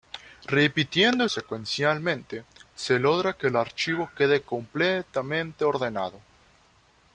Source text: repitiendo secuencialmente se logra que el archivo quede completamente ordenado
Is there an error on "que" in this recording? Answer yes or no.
no